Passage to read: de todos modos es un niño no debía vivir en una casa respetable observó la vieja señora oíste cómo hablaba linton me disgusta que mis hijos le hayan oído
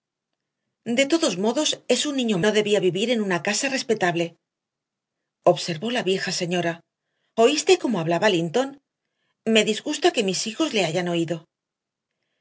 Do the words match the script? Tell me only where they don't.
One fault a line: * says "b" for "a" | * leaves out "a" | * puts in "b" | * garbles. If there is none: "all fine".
all fine